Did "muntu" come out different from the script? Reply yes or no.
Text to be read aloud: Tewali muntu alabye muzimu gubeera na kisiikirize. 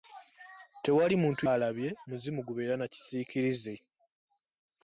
no